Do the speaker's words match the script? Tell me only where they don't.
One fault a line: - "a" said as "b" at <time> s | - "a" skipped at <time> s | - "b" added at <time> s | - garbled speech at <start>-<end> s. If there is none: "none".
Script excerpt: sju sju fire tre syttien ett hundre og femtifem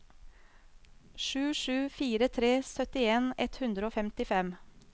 none